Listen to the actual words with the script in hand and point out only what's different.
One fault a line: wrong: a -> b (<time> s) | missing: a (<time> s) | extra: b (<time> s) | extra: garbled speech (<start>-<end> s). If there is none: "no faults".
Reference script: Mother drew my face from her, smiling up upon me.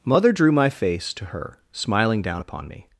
wrong: from -> to (1.1 s)
wrong: up -> down (2.2 s)